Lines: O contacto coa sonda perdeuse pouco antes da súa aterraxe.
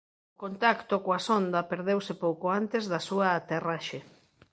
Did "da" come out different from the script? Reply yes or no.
no